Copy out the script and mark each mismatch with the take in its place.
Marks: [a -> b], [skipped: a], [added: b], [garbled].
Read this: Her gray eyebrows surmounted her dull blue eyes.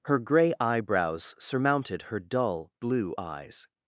Her gray eyebrows surmounted her dull blue eyes.